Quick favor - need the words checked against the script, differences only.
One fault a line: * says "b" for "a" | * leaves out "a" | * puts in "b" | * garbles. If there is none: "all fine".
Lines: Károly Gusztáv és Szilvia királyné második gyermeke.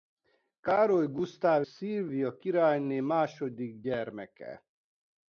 * leaves out "és"